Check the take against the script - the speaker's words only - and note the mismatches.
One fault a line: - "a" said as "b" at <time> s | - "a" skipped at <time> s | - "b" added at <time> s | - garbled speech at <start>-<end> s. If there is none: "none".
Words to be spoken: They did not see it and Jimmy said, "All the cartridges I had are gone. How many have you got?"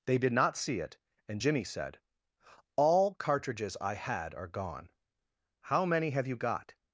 - "the" skipped at 3.1 s